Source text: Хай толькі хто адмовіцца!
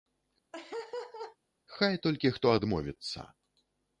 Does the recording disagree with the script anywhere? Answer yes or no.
no